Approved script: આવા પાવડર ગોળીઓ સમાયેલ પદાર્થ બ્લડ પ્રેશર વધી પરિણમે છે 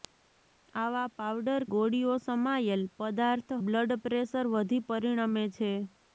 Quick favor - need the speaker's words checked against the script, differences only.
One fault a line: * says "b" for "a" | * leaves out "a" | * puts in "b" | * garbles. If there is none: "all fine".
all fine